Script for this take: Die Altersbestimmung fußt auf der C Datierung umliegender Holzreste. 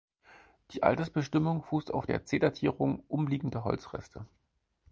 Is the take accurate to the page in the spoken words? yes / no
yes